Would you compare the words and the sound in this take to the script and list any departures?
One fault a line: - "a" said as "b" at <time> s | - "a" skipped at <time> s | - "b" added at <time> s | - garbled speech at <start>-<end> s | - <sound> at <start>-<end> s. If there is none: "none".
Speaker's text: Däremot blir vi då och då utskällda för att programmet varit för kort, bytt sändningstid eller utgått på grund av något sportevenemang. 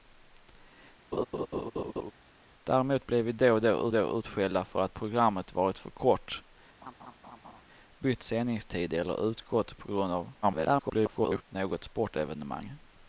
- laugh at 1.1-2.1 s
- "då" added at 3.9 s
- laugh at 6.8-7.6 s
- garbled speech at 10.4-11.4 s